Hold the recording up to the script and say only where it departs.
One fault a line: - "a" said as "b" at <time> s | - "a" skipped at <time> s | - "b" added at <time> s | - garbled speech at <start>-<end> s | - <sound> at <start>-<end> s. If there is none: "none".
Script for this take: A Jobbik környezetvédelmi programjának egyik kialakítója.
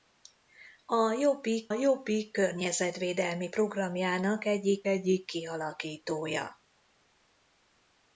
- "Jobbik" added at 1.7 s
- "egyik" added at 4.8 s